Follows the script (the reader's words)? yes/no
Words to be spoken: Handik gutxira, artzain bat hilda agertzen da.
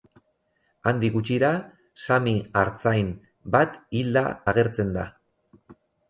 no